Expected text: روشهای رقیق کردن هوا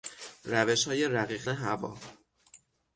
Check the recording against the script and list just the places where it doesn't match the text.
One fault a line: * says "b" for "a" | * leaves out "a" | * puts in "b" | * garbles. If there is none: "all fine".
* leaves out "کردن"